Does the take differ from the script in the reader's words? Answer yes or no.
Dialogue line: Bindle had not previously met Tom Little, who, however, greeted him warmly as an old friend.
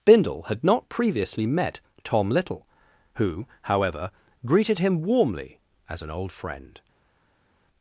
no